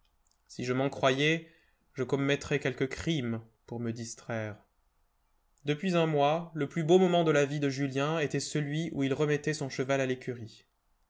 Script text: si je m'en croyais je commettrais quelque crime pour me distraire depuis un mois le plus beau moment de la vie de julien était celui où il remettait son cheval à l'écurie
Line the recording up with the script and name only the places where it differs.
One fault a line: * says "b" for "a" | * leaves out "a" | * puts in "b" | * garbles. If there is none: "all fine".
all fine